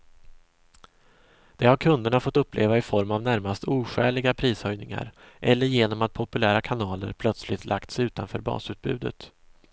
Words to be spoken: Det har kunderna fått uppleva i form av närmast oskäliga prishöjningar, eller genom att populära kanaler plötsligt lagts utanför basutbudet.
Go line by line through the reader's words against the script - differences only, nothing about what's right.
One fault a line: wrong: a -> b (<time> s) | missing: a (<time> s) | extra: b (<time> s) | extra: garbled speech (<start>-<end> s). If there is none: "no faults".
no faults